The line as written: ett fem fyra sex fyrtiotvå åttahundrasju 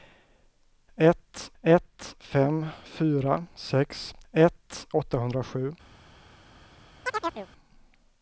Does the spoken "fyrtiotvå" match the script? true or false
false